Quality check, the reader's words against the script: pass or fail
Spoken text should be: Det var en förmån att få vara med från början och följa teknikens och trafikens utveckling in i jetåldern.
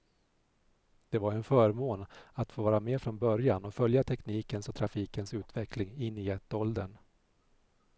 pass